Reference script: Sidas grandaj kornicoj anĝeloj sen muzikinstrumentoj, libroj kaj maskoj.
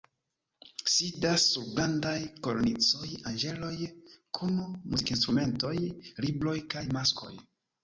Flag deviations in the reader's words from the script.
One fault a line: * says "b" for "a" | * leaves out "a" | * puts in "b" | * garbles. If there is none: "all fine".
* puts in "sur"
* says "kun" for "sen"